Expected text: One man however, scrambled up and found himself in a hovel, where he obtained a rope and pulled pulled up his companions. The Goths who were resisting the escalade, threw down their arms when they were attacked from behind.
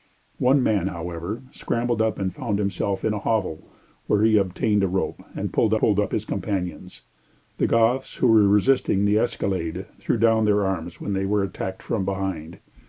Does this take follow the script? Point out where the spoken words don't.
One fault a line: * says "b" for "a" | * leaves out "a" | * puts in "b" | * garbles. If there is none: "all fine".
all fine